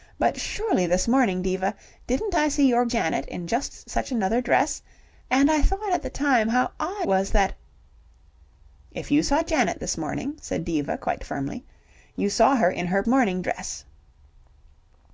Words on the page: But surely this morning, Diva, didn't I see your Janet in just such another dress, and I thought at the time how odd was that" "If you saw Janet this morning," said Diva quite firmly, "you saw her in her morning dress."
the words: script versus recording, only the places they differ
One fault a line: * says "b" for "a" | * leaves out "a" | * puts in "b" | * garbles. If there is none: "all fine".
all fine